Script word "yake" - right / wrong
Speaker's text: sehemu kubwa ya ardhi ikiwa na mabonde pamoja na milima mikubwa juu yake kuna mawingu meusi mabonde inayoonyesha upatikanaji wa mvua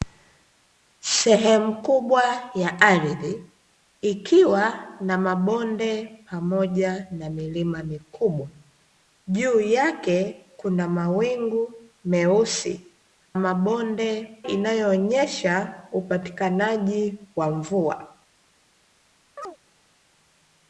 right